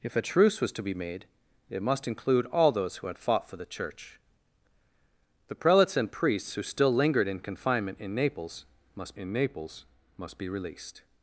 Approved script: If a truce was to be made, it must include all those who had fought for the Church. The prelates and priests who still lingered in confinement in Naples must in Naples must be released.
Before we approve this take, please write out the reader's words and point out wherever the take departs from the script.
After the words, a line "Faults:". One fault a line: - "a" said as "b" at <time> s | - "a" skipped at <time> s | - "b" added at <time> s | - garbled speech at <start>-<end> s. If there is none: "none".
If a truce was to be made, it must include all those who had fought for the Church. The prelates and priests who still lingered in confinement in Naples must in Naples must be released.
Faults:
none